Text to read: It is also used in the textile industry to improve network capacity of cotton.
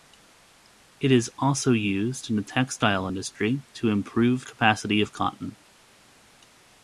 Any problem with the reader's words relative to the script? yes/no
yes